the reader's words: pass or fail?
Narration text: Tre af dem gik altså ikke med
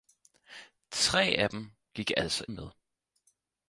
fail